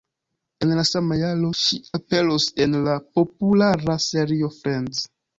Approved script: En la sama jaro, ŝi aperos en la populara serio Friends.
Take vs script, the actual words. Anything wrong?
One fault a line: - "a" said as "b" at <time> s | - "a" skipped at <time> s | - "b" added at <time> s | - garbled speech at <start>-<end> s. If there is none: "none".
none